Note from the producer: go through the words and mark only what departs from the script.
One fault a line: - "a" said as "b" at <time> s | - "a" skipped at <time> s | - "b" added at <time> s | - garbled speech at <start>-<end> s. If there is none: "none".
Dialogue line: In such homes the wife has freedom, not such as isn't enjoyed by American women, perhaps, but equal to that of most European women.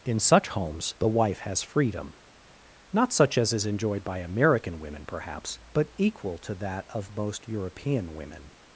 - "isn't" said as "is" at 3.5 s